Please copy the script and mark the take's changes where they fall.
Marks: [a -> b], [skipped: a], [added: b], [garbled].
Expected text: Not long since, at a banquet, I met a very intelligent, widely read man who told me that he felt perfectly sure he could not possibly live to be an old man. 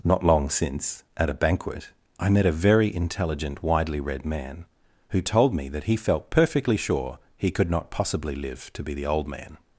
Not long since, at a banquet, I met a very intelligent, widely read man who told me that he felt perfectly sure he could not possibly live to be [an -> the] old man.